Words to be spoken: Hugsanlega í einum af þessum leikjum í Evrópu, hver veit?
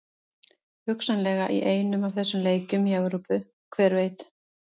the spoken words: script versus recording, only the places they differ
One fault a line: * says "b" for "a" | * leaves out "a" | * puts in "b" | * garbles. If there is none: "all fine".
all fine